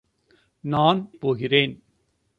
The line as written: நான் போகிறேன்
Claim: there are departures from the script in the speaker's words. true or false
false